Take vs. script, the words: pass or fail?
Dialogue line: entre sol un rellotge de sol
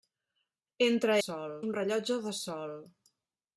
pass